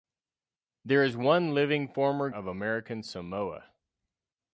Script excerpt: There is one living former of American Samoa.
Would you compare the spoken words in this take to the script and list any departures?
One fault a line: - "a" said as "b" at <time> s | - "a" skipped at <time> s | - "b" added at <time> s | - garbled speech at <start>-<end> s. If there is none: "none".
none